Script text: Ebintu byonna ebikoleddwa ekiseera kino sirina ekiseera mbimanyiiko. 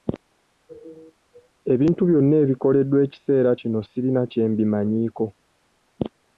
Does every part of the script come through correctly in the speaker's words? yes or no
no